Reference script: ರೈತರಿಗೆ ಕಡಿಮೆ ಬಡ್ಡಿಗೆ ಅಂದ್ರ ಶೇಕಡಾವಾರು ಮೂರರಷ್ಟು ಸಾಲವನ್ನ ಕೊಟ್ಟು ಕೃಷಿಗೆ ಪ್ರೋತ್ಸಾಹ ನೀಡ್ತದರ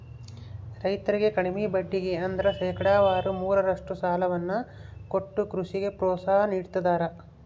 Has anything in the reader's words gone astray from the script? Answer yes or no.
no